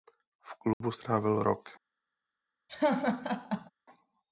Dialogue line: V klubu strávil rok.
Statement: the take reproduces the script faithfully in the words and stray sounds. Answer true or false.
false